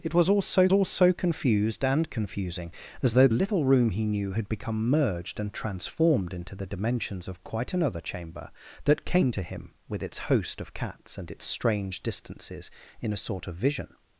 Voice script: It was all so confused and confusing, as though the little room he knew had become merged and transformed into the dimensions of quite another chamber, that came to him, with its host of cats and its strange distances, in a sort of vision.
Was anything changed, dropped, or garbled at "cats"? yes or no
no